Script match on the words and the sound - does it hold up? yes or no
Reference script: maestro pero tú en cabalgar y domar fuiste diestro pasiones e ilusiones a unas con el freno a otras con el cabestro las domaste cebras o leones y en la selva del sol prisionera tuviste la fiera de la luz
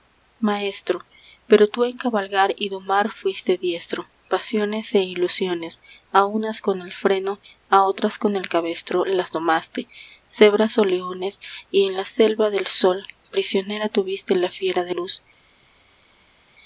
no